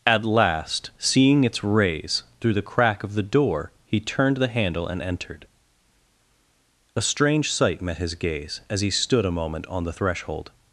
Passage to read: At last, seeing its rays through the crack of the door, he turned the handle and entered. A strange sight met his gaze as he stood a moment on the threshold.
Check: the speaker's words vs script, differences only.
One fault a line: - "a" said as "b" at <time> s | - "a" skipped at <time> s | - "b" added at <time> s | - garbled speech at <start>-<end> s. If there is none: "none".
none